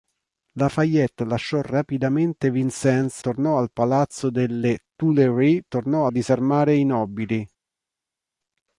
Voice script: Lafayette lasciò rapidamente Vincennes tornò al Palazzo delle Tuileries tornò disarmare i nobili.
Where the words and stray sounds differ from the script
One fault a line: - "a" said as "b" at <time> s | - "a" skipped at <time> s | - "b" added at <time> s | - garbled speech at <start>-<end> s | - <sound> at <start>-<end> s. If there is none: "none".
none